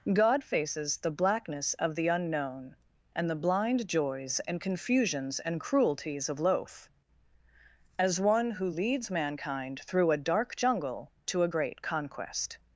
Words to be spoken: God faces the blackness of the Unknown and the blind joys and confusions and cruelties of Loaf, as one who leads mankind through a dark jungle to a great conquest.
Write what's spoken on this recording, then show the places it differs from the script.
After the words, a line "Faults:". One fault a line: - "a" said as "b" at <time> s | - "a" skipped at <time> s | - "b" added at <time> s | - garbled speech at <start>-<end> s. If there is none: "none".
God faces the blackness of the Unknown and the blind joys and confusions and cruelties of Loaf, as one who leads mankind through a dark jungle to a great conquest.
Faults:
none